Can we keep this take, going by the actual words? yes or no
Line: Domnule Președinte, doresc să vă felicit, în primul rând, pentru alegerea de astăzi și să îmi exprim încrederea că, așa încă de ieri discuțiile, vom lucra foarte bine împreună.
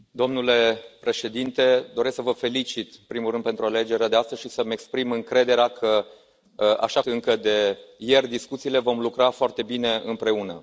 yes